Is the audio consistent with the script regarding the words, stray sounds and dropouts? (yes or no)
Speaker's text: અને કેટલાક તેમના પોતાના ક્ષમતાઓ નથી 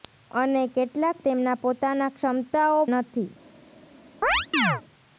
no